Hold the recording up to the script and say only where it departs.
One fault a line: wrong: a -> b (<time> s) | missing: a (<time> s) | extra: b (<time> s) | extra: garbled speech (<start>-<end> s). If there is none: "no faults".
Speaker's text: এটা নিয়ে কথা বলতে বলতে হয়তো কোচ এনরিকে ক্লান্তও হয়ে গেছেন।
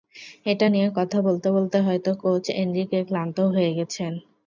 no faults